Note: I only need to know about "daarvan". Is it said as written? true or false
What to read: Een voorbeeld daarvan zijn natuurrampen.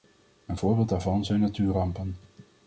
true